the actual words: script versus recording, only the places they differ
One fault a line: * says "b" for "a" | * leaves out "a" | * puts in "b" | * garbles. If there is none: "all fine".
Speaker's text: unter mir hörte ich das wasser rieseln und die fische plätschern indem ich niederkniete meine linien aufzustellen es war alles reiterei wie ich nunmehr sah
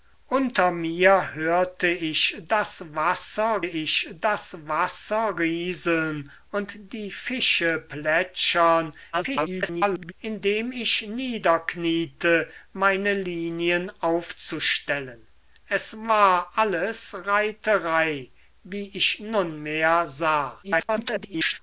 * puts in "ich das wasser"
* garbles
* garbles